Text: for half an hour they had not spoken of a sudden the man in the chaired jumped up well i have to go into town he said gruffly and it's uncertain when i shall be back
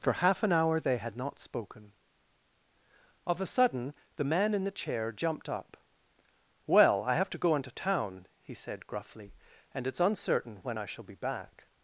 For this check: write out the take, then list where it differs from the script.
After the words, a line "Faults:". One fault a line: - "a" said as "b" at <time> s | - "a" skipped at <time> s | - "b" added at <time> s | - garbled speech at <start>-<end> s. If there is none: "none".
for half an hour they had not spoken of a sudden the man in the chair jumped up well i have to go into town he said gruffly and it's uncertain when i shall be back
Faults:
- "chaired" said as "chair" at 4.7 s